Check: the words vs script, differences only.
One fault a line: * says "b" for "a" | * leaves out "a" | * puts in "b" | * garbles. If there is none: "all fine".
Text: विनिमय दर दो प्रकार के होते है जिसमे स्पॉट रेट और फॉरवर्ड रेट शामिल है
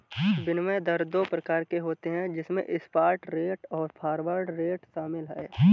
all fine